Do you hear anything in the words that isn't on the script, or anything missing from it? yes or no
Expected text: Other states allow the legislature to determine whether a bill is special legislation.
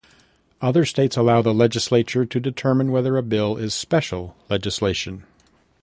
no